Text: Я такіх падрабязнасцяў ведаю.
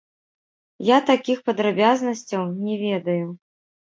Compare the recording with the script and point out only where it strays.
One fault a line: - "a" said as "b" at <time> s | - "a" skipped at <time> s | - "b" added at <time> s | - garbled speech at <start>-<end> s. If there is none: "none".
- "не" added at 2.6 s